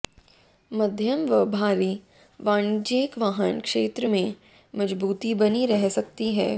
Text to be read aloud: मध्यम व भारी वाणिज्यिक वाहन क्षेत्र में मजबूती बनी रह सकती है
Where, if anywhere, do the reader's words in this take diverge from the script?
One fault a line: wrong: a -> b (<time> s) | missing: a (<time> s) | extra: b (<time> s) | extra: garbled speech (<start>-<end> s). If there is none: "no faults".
no faults